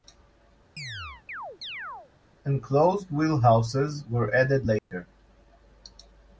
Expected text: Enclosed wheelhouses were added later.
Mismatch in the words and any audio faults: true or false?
true